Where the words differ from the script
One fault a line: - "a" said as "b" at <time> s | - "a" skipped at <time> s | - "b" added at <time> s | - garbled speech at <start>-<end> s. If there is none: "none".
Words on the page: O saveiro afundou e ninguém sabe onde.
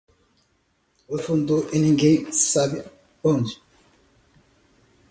- "saveiro" skipped at 1.2 s